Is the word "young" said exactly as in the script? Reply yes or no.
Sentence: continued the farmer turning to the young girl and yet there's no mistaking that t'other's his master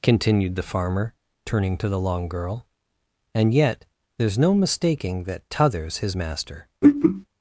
no